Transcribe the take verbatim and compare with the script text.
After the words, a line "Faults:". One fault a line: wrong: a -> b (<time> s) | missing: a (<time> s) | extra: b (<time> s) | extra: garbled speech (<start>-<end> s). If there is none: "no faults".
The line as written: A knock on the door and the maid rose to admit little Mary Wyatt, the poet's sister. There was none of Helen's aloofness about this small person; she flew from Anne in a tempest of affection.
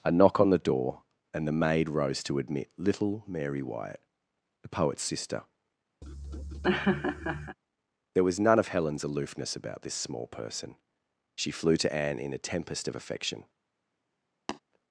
A knock on the door and the maid rose to admit little Mary Wyatt, the poet's sister. There was none of Helen's aloofness about this small person; she flew to Anne in a tempest of affection.
Faults:
wrong: from -> to (11.8 s)